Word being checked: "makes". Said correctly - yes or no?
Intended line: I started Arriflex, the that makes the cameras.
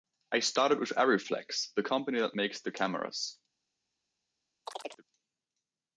yes